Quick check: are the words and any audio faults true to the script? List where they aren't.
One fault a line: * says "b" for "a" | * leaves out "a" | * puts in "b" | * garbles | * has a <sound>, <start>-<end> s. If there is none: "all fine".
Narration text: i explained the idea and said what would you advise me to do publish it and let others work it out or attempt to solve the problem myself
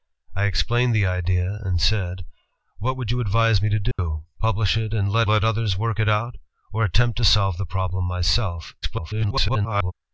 * has a dropout, 3.9-4.0 s
* puts in "let"
* garbles